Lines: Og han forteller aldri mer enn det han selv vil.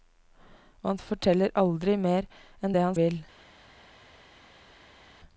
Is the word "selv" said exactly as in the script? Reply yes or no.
no